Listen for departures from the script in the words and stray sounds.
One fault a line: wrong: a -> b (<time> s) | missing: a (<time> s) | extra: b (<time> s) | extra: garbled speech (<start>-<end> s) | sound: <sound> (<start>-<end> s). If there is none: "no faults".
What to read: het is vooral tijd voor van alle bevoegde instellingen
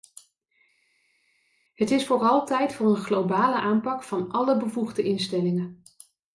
extra: een globale aanpak (2.9 s)